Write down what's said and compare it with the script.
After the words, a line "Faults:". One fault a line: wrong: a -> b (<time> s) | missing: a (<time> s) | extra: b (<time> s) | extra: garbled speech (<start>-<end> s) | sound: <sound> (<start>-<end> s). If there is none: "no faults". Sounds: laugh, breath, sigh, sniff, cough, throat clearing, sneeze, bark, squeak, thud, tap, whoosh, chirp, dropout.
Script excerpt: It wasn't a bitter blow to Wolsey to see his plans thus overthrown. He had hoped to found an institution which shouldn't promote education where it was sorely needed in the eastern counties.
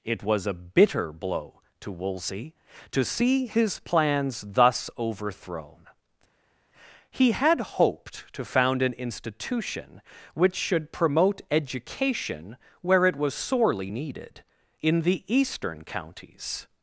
It was a bitter blow to Wolsey to see his plans thus overthrown. He had hoped to found an institution which should promote education where it was sorely needed in the eastern counties.
Faults:
wrong: wasn't -> was (0.2 s)
wrong: shouldn't -> should (10.6 s)